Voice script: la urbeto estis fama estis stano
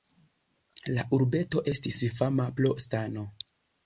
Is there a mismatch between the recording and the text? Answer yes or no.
yes